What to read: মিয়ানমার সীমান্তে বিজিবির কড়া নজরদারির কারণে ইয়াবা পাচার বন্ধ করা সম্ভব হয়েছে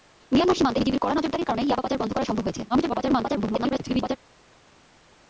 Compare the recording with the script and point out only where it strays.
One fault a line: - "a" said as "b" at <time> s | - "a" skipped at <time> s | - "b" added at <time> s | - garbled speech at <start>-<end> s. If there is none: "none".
- garbled speech at 2.7-4.2 s